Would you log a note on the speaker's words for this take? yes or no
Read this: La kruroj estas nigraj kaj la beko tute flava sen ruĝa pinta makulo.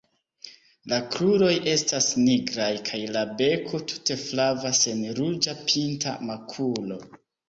no